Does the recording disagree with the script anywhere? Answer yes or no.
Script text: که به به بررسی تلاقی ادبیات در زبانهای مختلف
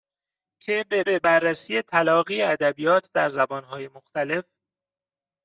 no